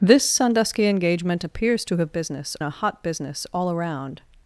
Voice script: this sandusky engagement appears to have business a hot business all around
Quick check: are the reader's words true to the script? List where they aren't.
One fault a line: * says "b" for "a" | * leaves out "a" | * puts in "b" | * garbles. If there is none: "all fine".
all fine